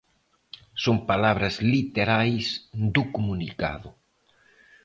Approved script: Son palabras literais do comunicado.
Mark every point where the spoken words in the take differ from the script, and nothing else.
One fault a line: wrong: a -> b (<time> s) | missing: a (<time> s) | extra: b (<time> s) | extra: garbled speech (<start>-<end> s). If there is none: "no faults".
no faults